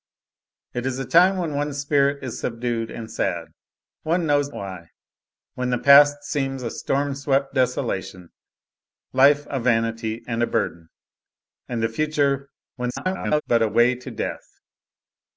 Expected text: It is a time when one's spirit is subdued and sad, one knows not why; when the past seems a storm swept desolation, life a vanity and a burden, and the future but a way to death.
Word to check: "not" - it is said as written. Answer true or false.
false